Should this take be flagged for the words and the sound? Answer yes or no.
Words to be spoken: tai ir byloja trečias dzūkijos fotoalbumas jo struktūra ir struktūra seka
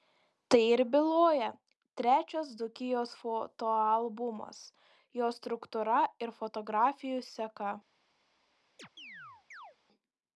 yes